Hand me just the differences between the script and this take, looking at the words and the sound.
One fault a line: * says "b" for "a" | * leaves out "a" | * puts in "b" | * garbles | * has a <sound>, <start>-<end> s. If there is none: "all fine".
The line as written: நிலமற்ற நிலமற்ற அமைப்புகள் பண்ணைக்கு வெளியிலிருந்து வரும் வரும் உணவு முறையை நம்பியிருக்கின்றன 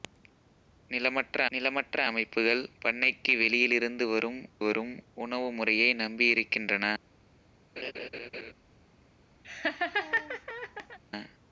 * has a laugh, 7.8-8.5 s
* has a laugh, 9.4-11.0 s